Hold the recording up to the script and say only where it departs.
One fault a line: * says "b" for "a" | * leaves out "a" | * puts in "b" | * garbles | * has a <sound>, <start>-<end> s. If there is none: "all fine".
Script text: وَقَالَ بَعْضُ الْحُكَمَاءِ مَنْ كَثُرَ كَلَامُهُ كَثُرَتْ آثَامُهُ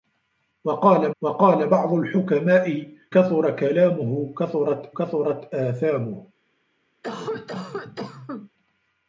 * puts in "وَقَالَ"
* leaves out "مَنْ"
* puts in "كَثُرَتْ"
* has a cough, 7.0-8.5 s